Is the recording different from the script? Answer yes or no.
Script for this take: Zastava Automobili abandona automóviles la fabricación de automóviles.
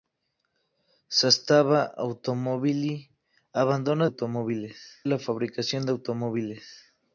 no